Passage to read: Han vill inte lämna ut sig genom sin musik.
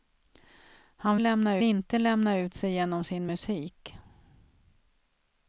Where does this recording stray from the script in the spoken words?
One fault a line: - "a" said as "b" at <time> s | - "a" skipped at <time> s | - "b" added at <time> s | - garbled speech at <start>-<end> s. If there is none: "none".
- "vill" said as "lämna" at 1.2 s